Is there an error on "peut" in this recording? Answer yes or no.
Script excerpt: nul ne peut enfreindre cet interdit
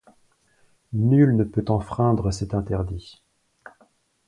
no